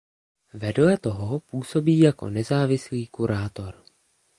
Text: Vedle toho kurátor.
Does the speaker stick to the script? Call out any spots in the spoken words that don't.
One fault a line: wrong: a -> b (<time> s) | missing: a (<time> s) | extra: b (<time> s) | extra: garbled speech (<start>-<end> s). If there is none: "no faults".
extra: působí jako nezávislý (1.4 s)